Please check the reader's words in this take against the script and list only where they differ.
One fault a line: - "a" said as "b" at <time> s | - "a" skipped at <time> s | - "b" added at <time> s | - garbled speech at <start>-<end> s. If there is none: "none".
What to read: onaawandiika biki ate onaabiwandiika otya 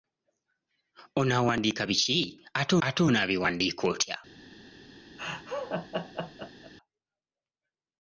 - "ate" added at 2.9 s